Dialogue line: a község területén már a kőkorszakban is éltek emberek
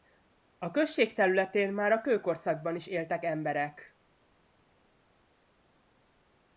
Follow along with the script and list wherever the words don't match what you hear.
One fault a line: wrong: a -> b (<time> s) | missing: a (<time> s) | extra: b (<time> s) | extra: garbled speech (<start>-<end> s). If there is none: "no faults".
no faults